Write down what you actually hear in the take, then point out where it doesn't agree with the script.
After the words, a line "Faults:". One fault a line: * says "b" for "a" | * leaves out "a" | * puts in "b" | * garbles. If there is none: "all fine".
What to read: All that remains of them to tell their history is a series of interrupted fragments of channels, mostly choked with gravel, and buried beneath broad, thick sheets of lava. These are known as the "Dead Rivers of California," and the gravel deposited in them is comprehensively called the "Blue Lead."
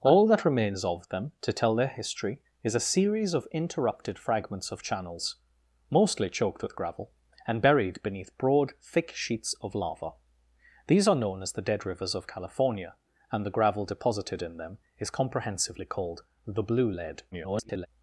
All that remains of them to tell their history is a series of interrupted fragments of channels, mostly choked with gravel, and buried beneath broad, thick sheets of lava. These are known as the "Dead Rivers of California," and the gravel deposited in them is comprehensively called the "Blue Lead." [garbled]
Faults:
* garbles